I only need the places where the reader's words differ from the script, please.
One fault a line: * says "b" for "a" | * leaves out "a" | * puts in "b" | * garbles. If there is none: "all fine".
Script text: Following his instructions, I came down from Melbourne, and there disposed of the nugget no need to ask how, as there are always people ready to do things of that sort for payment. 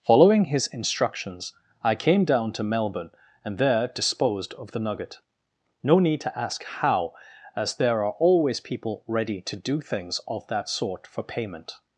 * says "to" for "from"